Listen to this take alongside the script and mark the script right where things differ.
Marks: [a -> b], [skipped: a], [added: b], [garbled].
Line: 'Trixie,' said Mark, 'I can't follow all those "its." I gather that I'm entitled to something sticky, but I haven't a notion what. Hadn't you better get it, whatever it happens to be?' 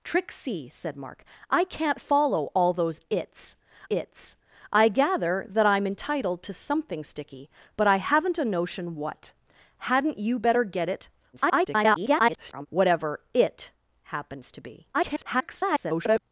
'Trixie,' said Mark, 'I can't follow all those "its." [added: its] I gather that I'm entitled to something sticky, but I haven't a notion what. Hadn't you better get it, [garbled] whatever it happens to be?' [garbled]